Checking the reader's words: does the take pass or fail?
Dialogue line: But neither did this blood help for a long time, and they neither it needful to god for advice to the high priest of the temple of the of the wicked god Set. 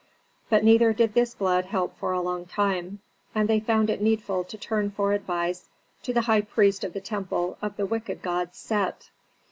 fail